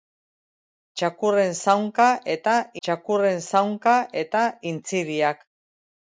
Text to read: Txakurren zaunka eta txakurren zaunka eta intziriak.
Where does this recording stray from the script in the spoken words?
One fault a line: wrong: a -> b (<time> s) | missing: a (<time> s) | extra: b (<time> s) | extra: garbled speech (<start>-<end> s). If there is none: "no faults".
no faults